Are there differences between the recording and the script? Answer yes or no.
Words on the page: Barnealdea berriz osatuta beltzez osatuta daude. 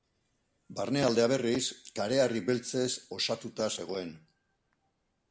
yes